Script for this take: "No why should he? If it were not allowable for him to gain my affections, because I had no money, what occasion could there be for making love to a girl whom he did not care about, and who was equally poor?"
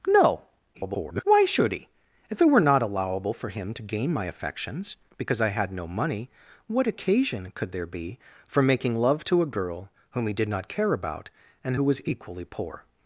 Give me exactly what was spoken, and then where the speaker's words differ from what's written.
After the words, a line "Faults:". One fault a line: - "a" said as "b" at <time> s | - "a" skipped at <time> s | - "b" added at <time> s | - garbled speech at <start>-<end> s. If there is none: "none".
"No [garbled] why should he? If it were not allowable for him to gain my affections, because I had no money, what occasion could there be for making love to a girl whom he did not care about, and who was equally poor?"
Faults:
- garbled speech at 0.7-1.2 s